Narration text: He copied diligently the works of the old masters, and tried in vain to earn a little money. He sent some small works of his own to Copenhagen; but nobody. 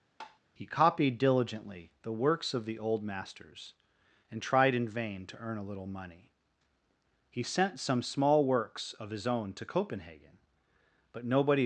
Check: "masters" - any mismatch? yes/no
no